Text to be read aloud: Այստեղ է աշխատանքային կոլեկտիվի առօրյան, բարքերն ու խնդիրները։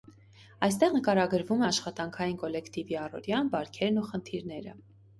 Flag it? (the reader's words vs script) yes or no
yes